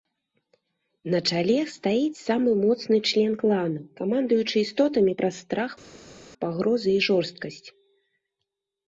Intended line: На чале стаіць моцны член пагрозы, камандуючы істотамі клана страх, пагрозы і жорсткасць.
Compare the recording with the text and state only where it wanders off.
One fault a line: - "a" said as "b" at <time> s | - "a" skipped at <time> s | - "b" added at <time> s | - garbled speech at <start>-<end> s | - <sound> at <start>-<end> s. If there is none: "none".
- "самы" added at 2.3 s
- "пагрозы" said as "клана" at 3.4 s
- "клана" said as "праз" at 5.2 s